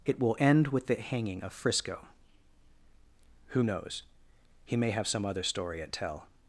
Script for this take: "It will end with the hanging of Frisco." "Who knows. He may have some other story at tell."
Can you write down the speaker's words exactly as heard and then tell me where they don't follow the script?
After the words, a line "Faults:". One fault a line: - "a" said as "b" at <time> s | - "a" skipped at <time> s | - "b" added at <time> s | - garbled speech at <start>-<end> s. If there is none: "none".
"It will end with the hanging of Frisco." "Who knows. He may have some other story at tell."
Faults:
none